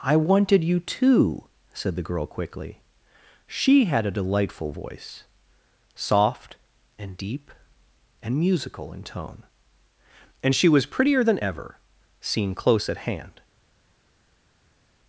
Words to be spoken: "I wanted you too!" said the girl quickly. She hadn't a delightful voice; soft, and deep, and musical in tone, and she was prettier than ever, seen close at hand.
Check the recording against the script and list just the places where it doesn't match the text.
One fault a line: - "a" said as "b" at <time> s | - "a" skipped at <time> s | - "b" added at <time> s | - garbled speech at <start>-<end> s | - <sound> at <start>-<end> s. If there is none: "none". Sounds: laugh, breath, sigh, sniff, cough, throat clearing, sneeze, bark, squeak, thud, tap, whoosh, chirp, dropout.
- "hadn't" said as "had" at 3.9 s